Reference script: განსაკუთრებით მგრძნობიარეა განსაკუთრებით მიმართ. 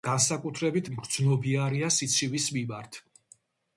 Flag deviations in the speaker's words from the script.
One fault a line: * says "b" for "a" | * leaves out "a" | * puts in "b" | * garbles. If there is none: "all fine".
* says "სიცივის" for "განსაკუთრებით"